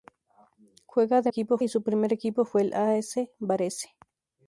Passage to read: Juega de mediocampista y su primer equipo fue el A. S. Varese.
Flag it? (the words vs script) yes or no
yes